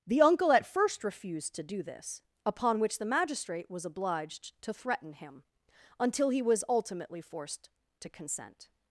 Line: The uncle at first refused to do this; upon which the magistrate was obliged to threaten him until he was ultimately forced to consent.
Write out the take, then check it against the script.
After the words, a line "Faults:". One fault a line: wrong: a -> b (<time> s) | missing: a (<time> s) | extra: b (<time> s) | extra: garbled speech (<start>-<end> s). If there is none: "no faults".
The uncle at first refused to do this; upon which the magistrate was obliged to threaten him until he was ultimately forced to consent.
Faults:
no faults